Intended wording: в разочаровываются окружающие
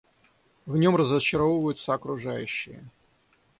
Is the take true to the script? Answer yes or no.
no